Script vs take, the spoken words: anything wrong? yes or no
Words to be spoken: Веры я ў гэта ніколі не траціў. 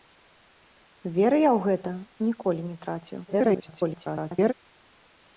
yes